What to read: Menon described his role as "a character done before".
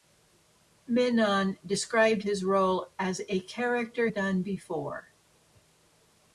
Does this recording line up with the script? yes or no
yes